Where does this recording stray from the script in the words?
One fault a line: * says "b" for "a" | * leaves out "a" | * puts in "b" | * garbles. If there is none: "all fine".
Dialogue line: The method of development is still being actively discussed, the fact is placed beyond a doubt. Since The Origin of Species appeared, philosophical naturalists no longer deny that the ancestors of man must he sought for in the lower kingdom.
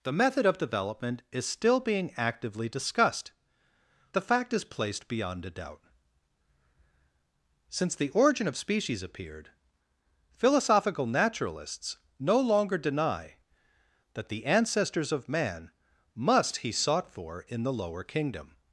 all fine